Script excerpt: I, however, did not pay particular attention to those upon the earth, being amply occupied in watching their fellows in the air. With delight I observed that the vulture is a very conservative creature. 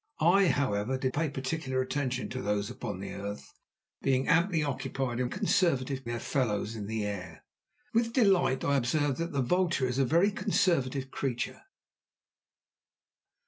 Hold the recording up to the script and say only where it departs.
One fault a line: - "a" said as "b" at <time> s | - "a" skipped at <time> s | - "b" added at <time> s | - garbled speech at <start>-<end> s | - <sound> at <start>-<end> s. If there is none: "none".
- "not" skipped at 1.1 s
- "watching" said as "conservative" at 5.3 s